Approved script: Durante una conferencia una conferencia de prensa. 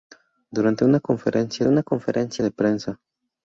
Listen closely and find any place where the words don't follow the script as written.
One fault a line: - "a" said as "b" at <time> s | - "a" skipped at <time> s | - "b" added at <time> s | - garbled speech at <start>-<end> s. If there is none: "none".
none